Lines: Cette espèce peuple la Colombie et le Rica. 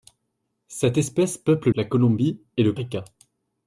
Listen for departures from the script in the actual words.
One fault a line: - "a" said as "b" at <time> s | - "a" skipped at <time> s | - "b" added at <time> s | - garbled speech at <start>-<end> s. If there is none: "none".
none